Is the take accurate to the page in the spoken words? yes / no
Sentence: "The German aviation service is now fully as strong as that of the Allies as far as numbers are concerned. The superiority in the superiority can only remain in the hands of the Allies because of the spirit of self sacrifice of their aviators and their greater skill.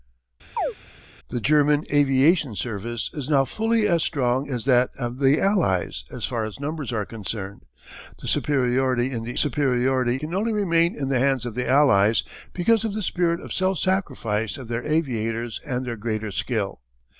yes